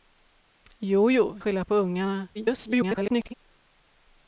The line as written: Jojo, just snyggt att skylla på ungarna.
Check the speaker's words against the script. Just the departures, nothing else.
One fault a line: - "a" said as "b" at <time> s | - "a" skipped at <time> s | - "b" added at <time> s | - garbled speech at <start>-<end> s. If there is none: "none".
- "just snyggt att" skipped at 1.4 s
- garbled speech at 2.3-3.3 s